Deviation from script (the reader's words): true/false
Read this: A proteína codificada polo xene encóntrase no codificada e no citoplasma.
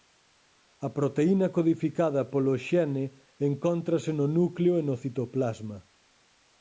true